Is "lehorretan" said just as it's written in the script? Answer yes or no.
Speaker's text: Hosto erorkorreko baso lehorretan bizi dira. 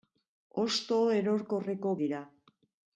no